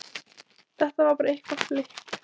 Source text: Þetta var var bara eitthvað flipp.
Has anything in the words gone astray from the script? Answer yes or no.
yes